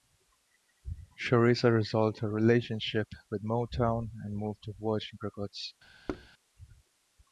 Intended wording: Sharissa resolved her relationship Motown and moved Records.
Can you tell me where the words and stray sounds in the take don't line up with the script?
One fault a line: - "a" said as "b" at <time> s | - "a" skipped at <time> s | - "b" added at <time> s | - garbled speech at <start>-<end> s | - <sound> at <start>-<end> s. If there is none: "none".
- "with" added at 3.3 s
- "to Virgin" added at 4.6 s
- thud at 6.1-6.3 s